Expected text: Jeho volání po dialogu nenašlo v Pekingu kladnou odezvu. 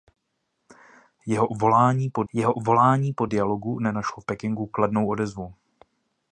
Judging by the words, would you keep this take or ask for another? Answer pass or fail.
fail